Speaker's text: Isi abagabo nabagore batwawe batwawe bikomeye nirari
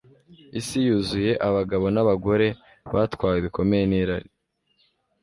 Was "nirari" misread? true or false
false